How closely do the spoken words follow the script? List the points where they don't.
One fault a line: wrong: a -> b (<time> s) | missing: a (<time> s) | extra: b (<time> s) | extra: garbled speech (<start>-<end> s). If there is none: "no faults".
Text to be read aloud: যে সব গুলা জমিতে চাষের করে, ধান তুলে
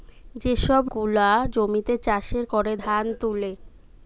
no faults